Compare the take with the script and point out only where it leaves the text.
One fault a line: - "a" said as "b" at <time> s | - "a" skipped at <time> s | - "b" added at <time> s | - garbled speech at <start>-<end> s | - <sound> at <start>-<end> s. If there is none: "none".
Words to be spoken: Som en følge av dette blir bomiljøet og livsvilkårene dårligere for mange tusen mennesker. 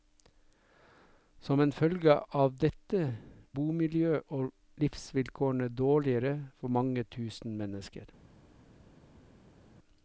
- "blir" skipped at 3.0 s